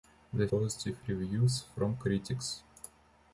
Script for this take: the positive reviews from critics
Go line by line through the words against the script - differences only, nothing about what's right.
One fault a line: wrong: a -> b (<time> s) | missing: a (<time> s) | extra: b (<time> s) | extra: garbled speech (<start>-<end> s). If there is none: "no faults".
no faults